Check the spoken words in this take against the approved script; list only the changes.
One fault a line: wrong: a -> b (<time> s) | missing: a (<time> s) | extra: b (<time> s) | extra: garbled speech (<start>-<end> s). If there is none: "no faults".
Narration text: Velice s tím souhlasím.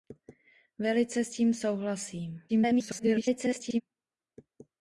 extra: garbled speech (2.5-3.8 s)